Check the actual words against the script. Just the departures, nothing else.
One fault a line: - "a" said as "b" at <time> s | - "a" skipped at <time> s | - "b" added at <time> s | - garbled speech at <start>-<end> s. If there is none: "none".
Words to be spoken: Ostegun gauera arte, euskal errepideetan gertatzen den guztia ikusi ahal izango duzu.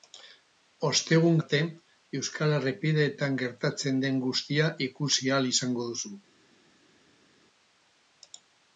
- "gauera" skipped at 1.4 s